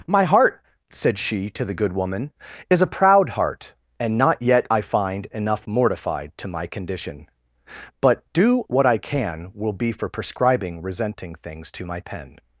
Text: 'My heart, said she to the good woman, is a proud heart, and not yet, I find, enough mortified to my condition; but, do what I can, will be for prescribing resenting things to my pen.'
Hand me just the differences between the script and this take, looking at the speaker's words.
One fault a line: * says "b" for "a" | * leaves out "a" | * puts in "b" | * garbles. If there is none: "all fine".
all fine